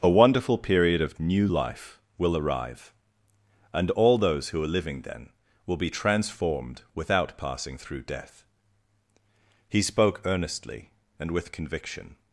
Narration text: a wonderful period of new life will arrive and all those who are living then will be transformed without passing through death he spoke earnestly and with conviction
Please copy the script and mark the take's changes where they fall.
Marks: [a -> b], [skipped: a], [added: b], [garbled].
a wonderful period of new life will arrive and all those who are living then will be transformed without passing through death he spoke earnestly and with conviction